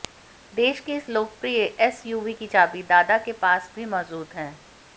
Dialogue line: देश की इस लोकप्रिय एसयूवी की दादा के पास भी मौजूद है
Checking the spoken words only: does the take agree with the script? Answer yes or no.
no